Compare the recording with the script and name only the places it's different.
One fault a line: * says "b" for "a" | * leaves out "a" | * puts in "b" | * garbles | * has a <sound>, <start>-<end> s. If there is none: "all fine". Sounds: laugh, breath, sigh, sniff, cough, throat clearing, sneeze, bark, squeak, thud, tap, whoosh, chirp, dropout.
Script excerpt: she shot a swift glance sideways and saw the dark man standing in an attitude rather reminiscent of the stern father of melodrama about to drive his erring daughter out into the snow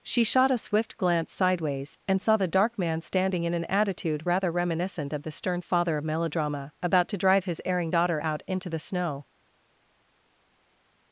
all fine